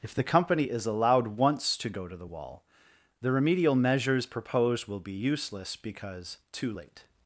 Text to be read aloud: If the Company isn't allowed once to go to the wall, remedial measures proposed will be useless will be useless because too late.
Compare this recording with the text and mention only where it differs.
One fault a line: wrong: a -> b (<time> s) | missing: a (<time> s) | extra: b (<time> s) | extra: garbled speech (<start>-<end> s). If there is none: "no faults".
wrong: isn't -> is (0.6 s)
extra: the (3.2 s)
missing: will be useless (5.7 s)